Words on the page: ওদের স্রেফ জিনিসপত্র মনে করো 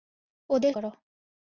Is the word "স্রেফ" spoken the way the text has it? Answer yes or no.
no